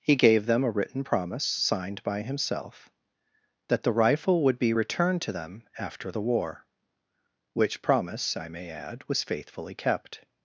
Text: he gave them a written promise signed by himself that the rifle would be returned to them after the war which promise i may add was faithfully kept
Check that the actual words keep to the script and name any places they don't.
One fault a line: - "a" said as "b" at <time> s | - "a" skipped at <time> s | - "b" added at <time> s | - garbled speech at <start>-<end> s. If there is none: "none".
none